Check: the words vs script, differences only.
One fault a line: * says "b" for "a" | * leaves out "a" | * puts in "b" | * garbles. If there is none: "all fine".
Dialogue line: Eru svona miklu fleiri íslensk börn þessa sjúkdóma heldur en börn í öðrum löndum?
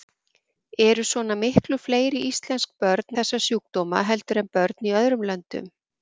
all fine